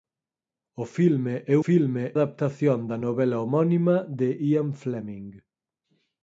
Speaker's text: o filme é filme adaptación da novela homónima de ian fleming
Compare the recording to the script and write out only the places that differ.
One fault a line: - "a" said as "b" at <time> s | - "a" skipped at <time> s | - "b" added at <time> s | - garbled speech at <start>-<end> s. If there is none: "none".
none